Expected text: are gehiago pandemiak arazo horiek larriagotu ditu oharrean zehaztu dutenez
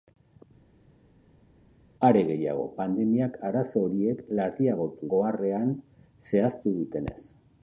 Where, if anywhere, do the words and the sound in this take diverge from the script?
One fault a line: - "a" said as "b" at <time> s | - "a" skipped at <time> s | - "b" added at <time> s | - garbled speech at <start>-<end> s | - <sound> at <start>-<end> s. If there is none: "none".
- "ditu" skipped at 5.1 s